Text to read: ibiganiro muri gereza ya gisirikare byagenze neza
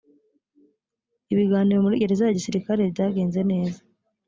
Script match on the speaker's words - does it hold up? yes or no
yes